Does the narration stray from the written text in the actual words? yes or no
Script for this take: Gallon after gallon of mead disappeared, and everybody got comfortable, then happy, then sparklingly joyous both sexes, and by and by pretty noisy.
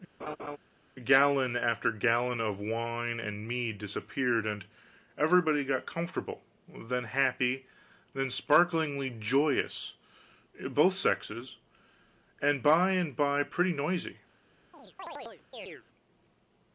yes